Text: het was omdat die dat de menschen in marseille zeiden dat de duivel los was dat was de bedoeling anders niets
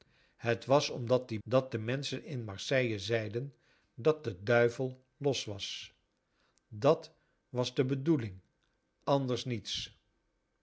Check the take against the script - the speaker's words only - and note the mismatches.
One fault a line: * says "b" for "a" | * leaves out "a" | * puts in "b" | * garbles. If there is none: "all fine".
all fine